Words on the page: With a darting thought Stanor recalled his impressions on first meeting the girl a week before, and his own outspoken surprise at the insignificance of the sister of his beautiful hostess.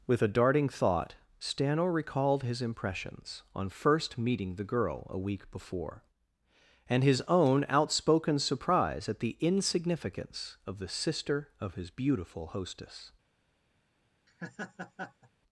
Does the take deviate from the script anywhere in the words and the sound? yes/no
yes